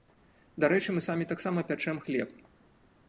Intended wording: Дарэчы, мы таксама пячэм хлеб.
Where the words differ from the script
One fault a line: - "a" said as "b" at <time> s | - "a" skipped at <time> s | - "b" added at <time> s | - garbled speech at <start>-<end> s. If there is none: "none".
- "самі" added at 1.1 s